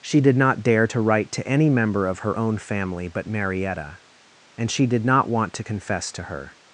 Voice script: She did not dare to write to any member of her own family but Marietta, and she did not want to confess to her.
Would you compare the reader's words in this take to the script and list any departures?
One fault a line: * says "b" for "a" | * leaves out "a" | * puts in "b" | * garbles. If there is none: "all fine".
all fine